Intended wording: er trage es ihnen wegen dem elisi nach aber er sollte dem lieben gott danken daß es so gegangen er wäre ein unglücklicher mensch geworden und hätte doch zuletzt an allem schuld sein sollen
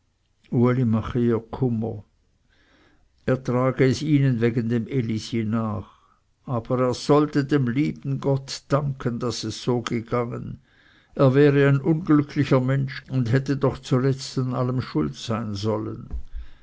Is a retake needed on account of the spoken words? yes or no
yes